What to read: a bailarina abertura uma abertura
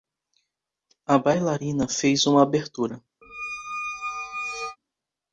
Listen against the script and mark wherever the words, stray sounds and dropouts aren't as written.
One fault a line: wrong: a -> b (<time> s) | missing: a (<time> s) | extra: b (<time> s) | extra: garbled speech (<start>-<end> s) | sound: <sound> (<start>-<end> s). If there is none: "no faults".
wrong: abertura -> fez (1.9 s)
sound: squeak (3.2-4.8 s)